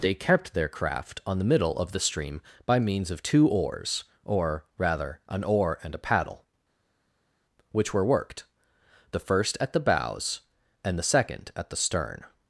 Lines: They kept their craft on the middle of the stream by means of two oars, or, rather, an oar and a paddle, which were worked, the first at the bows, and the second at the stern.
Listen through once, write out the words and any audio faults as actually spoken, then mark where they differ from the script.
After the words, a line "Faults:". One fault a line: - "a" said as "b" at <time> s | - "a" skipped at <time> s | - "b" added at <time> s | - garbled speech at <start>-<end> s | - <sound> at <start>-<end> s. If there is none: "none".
They kept their craft on the middle of the stream by means of two oars, or, rather, an oar and a paddle, which were worked, the first at the bows, and the second at the stern.
Faults:
none